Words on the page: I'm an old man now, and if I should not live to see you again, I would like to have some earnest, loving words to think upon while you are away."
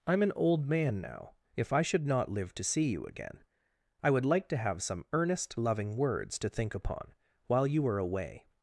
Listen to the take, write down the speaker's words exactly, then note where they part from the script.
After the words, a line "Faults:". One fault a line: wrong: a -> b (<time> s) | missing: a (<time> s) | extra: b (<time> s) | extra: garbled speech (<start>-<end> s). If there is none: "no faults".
I'm an old man now, if I should not live to see you again, I would like to have some earnest, loving words to think upon while you are away."
Faults:
missing: and (1.3 s)